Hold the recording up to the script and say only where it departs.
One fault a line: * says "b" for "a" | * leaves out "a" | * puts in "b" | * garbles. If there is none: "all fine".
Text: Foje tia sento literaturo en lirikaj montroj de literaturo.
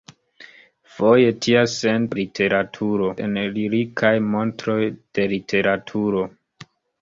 all fine